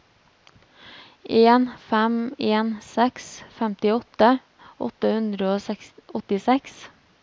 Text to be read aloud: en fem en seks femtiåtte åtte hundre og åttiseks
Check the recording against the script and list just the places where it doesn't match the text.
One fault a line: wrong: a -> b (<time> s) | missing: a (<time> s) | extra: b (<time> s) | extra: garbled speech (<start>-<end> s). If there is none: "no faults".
no faults